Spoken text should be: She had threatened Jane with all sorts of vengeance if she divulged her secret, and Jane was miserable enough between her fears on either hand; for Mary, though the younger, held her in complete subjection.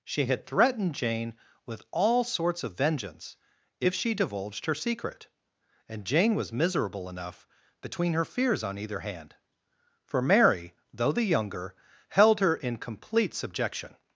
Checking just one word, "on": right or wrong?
right